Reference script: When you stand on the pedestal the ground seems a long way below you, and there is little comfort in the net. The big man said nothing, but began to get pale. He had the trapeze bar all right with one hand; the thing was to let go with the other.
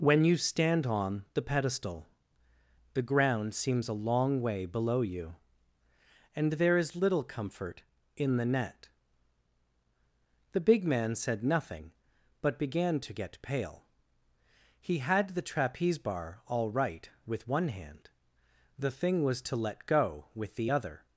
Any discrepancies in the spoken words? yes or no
no